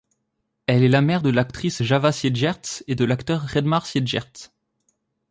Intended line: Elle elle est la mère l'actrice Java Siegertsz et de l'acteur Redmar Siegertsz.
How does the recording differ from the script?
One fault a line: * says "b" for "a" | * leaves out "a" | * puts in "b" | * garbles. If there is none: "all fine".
* leaves out "elle"
* puts in "de"